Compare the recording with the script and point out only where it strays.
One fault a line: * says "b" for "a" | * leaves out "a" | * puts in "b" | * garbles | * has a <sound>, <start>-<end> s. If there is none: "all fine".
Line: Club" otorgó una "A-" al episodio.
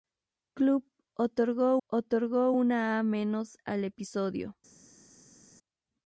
* puts in "otorgó"